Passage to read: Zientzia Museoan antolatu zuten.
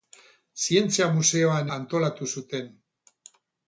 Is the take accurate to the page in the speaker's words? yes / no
yes